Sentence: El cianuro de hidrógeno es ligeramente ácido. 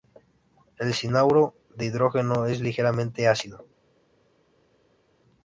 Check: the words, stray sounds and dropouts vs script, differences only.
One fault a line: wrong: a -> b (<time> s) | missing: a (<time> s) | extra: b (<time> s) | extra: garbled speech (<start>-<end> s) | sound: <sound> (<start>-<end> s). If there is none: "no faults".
no faults